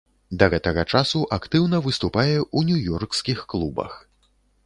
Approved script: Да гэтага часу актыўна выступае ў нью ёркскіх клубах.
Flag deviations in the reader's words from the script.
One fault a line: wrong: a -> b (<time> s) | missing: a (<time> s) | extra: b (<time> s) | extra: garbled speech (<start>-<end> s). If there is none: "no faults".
no faults